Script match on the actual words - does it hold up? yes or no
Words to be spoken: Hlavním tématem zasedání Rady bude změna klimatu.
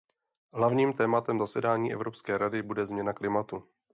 no